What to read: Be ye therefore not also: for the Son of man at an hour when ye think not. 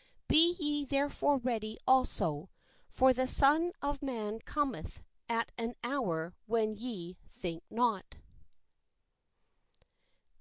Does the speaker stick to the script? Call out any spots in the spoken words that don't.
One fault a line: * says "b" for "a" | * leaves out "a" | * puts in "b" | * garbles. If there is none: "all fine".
* says "ready" for "not"
* puts in "cometh"